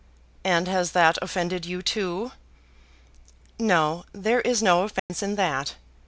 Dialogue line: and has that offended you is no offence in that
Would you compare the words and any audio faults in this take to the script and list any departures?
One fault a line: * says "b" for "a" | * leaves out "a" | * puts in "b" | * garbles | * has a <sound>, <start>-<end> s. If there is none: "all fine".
* puts in "too no there"
* has a dropout, 5.0-5.1 s